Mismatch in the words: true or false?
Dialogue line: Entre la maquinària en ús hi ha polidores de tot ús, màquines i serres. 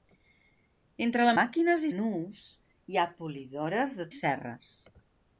true